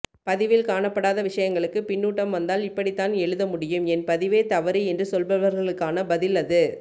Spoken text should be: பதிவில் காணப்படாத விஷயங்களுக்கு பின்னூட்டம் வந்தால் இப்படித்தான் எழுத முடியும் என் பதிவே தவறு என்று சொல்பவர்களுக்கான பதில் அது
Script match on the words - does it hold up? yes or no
yes